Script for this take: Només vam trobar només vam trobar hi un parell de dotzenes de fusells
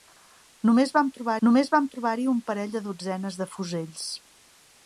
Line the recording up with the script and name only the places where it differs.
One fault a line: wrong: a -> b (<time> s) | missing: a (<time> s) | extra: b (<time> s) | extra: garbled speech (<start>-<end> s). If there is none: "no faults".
no faults